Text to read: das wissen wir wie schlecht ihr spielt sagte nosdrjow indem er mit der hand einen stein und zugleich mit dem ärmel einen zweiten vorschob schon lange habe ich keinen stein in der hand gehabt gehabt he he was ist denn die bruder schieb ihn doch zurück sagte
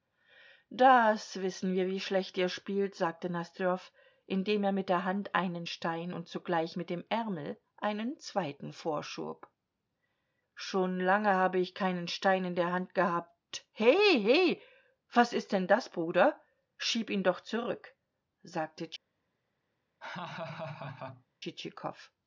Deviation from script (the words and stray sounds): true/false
true